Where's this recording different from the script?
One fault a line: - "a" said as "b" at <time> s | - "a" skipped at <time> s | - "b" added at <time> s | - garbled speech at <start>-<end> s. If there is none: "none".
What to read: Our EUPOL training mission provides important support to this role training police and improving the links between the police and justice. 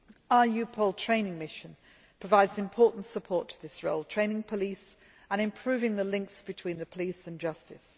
none